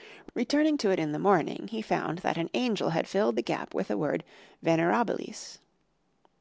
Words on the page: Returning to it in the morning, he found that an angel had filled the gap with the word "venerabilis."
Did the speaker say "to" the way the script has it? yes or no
yes